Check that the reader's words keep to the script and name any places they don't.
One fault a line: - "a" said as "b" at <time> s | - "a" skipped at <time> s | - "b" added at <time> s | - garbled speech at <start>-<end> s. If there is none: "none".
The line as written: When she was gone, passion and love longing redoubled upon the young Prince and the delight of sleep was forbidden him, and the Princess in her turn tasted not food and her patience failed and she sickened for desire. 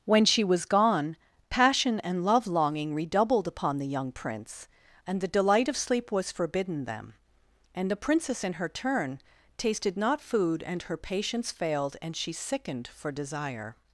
- "him" said as "them" at 6.8 s